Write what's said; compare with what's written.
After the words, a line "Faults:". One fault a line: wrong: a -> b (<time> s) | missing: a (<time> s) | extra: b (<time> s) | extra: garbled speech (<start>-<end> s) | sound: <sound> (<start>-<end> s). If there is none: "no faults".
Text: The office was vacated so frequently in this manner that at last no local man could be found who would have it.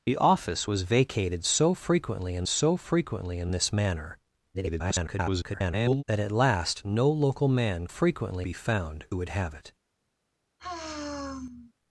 The office was vacated so frequently in so frequently in this manner [garbled] that at last no local man frequently be found who would have it.
Faults:
extra: so frequently in (2.5 s)
extra: garbled speech (4.5-6.0 s)
wrong: could -> frequently (7.9 s)
sound: sigh (10.6-11.7 s)